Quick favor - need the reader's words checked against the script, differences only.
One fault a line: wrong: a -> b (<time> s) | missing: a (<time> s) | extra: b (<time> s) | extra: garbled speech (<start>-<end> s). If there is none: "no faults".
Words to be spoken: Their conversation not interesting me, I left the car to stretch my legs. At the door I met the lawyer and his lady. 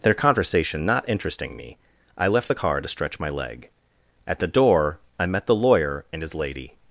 wrong: legs -> leg (3.3 s)